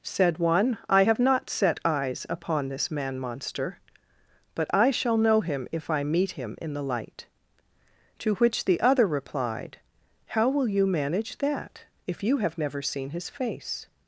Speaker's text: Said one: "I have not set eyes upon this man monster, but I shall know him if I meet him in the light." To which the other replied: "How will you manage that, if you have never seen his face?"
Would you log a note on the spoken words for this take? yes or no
no